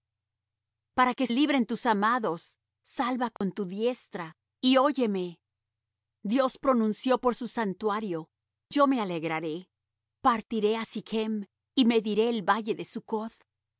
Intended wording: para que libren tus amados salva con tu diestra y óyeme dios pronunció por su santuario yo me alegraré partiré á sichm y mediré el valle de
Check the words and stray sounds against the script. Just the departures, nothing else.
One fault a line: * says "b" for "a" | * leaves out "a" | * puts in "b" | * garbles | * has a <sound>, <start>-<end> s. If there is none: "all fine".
* has a dropout, 3.4-3.4 s